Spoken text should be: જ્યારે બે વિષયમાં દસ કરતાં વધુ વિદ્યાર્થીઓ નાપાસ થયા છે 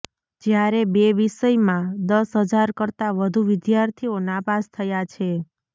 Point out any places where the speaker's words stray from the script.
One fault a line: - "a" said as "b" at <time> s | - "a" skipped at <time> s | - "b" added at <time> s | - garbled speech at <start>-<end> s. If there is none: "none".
- "હજાર" added at 2.5 s